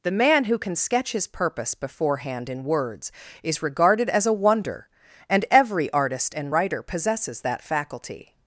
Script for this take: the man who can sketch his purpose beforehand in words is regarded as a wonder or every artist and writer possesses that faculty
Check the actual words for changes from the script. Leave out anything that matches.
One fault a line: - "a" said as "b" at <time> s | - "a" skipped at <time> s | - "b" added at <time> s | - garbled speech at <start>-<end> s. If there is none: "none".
- "or" said as "and" at 5.3 s